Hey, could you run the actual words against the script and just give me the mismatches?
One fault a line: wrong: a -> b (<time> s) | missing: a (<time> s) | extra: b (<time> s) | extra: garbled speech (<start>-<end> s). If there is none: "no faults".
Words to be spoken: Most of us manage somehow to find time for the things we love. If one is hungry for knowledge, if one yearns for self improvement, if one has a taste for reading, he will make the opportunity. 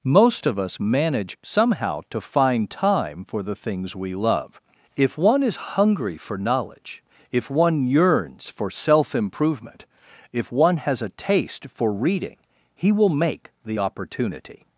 no faults